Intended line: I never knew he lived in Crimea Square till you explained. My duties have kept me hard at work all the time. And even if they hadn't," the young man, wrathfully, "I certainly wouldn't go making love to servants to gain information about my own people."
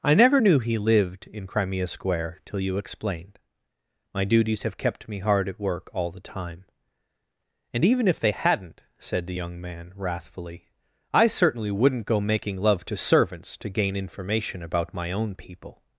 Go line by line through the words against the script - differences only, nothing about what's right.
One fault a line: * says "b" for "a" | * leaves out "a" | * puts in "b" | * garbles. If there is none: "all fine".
* puts in "said"